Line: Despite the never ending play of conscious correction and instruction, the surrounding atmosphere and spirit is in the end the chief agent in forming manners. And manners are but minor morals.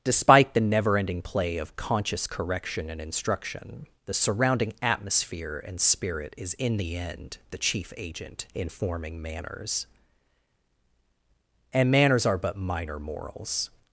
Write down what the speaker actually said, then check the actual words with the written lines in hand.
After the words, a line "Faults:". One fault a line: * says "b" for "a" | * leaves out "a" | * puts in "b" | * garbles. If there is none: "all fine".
Despite the never ending play of conscious correction and instruction, the surrounding atmosphere and spirit is in the end the chief agent in forming manners. And manners are but minor morals.
Faults:
all fine